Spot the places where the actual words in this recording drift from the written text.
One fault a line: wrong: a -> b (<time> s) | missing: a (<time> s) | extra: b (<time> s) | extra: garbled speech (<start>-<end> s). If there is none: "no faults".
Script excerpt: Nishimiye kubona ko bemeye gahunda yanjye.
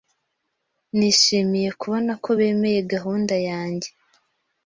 no faults